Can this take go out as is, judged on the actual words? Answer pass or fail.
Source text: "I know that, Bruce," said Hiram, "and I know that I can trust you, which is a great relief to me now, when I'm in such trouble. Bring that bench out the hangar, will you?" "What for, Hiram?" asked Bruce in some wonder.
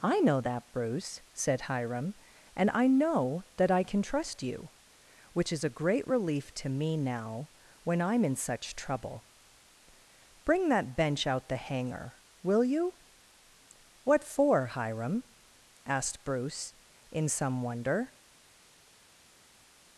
pass